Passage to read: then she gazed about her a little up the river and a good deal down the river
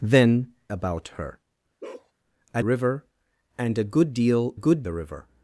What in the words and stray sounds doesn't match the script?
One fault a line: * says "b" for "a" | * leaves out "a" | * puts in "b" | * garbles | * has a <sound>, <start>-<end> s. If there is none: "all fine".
* leaves out "she gazed"
* has a bark, 1.8-2.1 s
* leaves out "little up the"
* says "good" for "down"